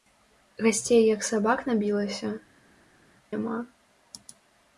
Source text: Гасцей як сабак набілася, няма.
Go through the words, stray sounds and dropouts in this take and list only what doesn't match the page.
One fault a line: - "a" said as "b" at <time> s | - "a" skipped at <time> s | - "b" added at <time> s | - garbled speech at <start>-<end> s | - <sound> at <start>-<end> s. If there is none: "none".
none